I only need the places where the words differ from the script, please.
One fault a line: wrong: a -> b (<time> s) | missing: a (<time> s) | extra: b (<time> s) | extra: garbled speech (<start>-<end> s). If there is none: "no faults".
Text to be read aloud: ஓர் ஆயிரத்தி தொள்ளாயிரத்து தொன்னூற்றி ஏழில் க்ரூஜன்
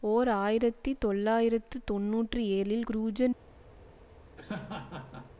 no faults